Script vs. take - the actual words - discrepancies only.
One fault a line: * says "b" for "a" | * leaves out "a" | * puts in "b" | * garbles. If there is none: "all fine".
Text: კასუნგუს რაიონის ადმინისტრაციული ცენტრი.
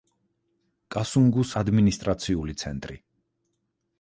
* leaves out "რაიონის"